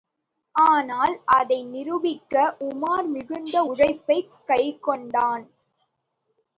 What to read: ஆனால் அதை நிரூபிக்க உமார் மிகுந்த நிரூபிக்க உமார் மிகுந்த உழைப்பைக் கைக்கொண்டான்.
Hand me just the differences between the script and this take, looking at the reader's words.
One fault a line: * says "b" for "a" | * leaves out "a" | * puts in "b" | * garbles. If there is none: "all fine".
* leaves out "நிரூபிக்க உமார் மிகுந்த"